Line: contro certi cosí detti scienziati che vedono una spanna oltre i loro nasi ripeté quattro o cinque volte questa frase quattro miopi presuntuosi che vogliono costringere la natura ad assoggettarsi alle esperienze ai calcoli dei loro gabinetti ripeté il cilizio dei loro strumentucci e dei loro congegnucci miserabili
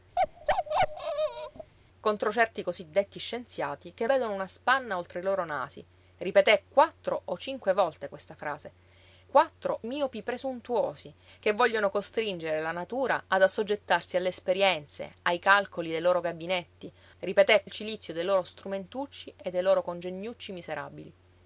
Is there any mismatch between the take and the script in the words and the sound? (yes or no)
yes